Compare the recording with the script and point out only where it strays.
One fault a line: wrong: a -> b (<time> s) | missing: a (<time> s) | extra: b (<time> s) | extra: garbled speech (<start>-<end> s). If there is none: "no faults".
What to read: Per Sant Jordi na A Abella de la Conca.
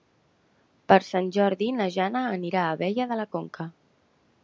extra: Jana anirà (2.0 s)